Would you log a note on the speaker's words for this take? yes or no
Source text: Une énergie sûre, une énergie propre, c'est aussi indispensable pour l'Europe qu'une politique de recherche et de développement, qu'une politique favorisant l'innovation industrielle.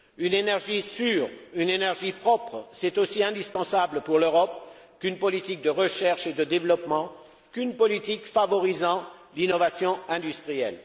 no